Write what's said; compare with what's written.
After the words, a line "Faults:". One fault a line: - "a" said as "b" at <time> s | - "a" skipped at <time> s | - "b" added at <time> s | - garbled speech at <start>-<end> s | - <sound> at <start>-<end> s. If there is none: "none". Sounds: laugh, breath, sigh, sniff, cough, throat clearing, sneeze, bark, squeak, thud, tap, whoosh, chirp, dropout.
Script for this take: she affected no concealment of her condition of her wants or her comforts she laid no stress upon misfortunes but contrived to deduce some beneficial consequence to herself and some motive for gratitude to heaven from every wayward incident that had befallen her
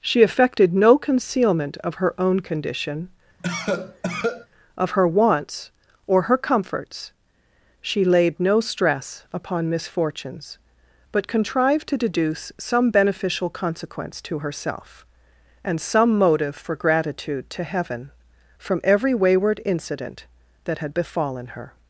she affected no concealment of her own condition of her wants or her comforts she laid no stress upon misfortunes but contrived to deduce some beneficial consequence to herself and some motive for gratitude to heaven from every wayward incident that had befallen her
Faults:
- "own" added at 2.2 s
- cough at 3.4-4.5 s